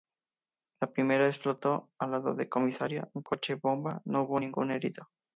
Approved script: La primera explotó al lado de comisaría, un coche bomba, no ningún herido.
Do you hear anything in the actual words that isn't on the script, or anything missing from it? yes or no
yes